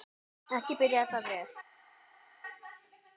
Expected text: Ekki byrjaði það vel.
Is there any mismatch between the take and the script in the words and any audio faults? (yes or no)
no